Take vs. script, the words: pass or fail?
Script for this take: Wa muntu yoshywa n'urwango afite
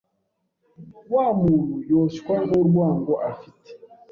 pass